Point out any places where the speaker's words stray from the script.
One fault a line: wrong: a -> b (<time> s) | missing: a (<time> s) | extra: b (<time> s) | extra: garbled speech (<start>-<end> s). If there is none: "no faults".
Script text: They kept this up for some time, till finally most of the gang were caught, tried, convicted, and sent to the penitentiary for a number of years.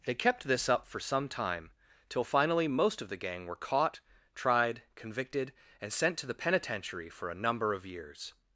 no faults